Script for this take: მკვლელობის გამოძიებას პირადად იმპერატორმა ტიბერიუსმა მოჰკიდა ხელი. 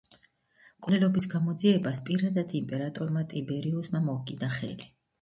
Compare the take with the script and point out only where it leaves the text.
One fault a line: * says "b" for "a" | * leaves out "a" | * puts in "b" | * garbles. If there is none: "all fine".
all fine